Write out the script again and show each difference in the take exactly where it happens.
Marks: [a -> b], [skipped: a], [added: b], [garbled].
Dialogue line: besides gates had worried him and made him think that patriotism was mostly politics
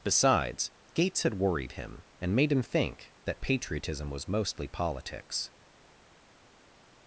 besides gates had worried him and made him think that patriotism was mostly politics